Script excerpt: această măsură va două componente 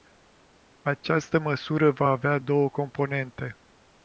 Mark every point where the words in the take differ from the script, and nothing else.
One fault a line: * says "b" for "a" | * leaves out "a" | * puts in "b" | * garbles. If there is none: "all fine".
* puts in "avea"